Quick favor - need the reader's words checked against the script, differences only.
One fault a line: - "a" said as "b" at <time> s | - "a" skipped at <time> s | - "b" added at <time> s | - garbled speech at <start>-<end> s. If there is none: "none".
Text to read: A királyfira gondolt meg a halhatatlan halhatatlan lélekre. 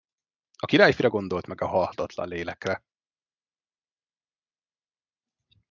- "halhatatlan" skipped at 2.3 s